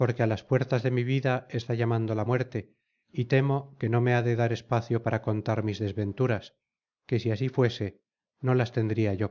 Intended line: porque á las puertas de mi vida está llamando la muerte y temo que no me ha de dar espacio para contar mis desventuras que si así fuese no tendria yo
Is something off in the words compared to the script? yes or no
yes